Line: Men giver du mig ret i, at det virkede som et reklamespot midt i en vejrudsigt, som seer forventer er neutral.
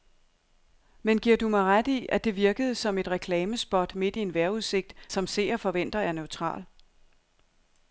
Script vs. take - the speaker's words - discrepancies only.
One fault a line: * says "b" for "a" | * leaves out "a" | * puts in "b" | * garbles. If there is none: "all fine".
all fine